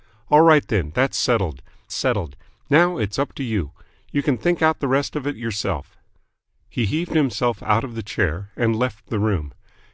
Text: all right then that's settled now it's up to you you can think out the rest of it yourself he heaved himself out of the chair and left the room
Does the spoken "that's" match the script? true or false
true